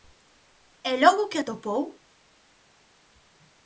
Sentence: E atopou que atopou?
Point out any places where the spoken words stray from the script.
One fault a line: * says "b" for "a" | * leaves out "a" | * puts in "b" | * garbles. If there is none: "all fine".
* says "logo" for "atopou"